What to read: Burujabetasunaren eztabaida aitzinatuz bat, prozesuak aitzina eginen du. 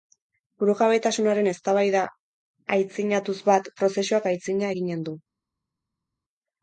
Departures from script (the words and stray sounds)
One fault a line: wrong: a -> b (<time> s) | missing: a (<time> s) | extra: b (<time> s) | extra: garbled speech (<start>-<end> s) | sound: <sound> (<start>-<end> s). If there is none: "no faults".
no faults